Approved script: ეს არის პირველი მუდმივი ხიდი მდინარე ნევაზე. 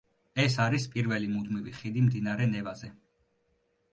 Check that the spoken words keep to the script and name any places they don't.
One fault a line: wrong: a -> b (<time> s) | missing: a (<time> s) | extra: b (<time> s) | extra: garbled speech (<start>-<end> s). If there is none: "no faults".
no faults